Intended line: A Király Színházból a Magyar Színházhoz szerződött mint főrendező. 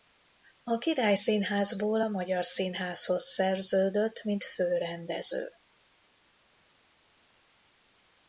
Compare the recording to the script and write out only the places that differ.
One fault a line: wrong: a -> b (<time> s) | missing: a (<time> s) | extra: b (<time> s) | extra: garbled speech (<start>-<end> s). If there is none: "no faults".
no faults